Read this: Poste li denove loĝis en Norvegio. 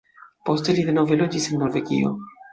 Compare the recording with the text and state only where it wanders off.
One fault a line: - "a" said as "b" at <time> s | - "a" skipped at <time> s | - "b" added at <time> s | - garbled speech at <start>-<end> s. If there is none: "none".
none